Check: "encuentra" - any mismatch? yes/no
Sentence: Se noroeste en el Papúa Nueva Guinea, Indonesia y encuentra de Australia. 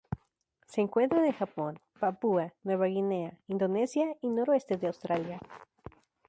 yes